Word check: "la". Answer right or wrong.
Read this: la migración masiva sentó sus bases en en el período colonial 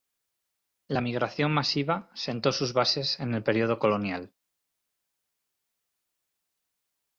right